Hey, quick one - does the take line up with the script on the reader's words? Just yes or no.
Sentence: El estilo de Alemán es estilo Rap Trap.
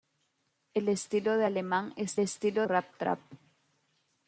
yes